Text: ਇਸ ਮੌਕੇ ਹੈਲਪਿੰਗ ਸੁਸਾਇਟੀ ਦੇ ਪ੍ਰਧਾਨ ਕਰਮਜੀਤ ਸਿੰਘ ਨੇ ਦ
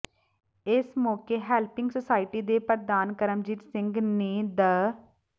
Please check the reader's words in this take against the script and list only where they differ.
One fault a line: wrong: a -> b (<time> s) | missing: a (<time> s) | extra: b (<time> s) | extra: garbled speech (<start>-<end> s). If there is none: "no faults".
no faults